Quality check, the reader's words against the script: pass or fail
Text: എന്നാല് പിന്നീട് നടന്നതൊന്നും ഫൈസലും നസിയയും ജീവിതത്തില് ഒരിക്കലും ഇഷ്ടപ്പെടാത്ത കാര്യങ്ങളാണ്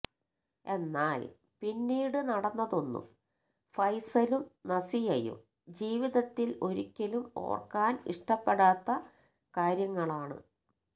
fail